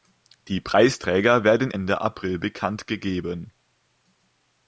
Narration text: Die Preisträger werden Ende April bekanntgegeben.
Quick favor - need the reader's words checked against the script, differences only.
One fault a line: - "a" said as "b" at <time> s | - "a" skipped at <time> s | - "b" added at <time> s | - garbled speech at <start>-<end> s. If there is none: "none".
none